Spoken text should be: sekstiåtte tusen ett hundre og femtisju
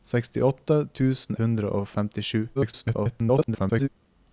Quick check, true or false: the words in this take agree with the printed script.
false